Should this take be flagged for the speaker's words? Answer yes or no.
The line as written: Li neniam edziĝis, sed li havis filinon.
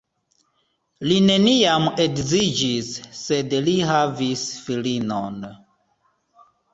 no